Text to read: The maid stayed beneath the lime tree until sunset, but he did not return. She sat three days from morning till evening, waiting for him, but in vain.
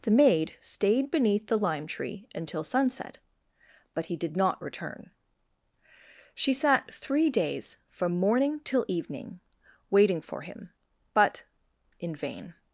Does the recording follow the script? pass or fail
pass